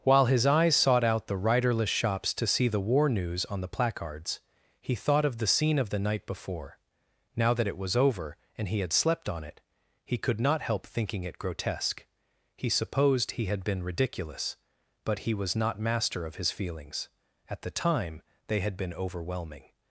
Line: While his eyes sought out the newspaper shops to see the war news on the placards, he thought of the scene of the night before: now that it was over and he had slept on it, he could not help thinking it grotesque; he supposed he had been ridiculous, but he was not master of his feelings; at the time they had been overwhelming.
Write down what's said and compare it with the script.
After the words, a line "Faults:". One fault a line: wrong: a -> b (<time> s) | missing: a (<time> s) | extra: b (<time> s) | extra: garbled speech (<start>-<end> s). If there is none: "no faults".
While his eyes sought out the riderless shops to see the war news on the placards, he thought of the scene of the night before: now that it was over and he had slept on it, he could not help thinking it grotesque; he supposed he had been ridiculous, but he was not master of his feelings; at the time they had been overwhelming.
Faults:
wrong: newspaper -> riderless (1.4 s)